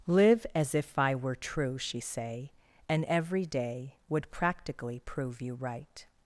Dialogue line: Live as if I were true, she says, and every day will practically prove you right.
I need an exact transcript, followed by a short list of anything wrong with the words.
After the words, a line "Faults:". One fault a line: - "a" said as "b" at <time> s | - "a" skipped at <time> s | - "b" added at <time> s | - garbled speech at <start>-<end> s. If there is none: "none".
Live as if I were true, she say, and every day would practically prove you right.
Faults:
- "says" said as "say" at 2.0 s
- "will" said as "would" at 4.1 s